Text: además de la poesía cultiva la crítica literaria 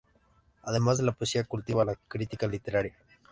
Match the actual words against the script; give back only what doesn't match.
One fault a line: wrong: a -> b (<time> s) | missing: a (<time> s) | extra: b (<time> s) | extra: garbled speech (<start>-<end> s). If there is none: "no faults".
no faults